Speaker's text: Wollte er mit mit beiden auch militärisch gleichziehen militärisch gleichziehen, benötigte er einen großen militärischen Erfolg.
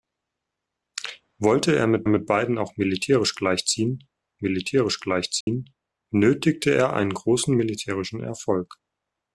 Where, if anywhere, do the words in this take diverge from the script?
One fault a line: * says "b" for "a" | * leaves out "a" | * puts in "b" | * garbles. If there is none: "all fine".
all fine